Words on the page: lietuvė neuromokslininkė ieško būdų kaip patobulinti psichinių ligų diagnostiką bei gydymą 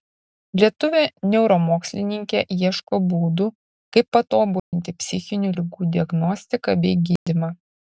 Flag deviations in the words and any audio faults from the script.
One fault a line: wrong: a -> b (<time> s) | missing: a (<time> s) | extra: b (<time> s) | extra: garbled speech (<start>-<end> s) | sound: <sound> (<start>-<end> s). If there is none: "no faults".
sound: dropout (4.6-4.7 s)
sound: dropout (7.2-7.3 s)